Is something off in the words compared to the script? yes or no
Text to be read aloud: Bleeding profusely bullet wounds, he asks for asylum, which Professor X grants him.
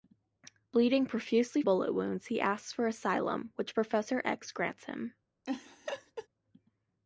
no